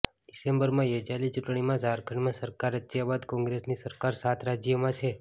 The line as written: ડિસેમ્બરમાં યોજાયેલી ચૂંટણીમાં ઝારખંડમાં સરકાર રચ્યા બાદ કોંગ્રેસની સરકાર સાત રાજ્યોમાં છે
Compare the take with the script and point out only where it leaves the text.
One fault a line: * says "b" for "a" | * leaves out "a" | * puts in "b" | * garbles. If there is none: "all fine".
all fine